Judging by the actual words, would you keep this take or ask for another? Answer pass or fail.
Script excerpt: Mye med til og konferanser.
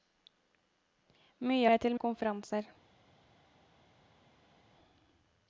pass